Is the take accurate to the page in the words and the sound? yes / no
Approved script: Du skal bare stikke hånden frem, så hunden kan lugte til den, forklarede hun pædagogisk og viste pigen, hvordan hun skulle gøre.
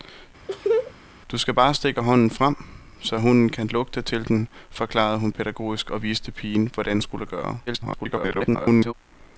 no